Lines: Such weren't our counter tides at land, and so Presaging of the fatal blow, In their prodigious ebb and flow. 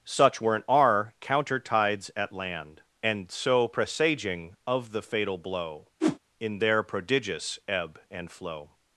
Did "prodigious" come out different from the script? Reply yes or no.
no